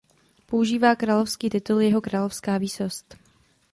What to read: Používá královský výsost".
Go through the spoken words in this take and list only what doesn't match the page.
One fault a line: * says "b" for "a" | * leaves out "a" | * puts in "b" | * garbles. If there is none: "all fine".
* puts in "titul Jeho královská"